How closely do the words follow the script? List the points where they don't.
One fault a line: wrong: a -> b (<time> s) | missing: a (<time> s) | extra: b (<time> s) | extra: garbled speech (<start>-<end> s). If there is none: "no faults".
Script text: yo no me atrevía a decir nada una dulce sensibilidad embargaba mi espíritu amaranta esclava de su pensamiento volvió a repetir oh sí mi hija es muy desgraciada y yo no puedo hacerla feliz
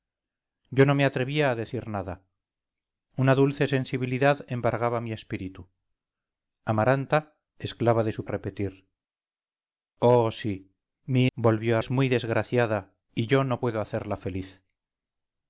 missing: pensamiento volvió (8.2 s)
wrong: hija -> volvió (11.3 s)